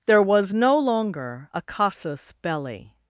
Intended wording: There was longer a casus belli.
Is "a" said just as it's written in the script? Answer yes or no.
yes